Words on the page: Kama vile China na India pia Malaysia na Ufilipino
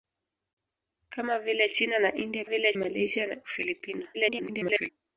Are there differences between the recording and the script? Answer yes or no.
yes